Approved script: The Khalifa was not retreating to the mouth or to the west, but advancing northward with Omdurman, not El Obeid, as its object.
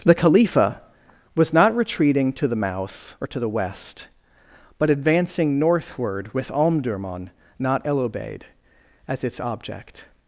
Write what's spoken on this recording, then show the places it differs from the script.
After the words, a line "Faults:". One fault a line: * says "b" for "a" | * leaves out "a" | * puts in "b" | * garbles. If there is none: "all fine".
The Khalifa was not retreating to the mouth or to the west, but advancing northward with Omdurman, not El Obeid, as its object.
Faults:
all fine